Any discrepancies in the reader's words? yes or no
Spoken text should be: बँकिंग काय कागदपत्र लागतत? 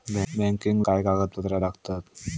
no